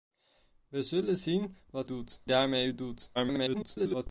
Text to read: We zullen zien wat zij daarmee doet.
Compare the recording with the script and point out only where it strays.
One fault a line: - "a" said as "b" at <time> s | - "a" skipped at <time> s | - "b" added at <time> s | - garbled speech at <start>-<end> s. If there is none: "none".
- "zij" said as "doet" at 1.8 s
- garbled speech at 3.1-4.1 s